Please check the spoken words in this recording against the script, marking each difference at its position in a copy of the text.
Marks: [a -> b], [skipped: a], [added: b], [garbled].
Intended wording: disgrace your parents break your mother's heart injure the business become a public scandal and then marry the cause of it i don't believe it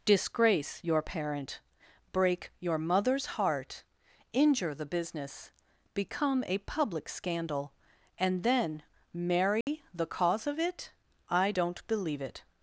disgrace your [parents -> parent] break your mother's heart injure the business become a public scandal and then marry the cause of it i don't believe it